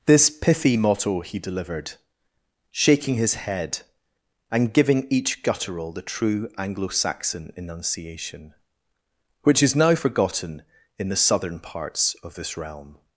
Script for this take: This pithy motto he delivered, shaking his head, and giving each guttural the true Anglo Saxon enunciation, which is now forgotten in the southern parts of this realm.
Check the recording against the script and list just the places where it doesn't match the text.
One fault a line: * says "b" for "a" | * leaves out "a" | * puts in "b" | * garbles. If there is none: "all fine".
all fine